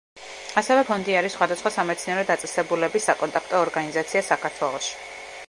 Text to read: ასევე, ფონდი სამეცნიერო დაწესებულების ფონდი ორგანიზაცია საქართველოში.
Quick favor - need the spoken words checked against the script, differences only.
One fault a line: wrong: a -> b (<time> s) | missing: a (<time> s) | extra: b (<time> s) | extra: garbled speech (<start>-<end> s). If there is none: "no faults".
extra: არის სხვადასხვა (1.2 s)
wrong: ფონდი -> საკონტაქტო (3.1 s)